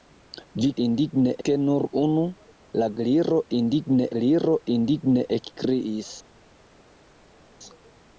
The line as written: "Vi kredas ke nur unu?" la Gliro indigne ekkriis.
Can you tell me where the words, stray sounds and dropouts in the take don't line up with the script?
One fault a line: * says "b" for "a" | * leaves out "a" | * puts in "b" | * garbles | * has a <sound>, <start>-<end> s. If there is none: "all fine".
* says "indigne" for "kredas"
* puts in "Gliro indigne"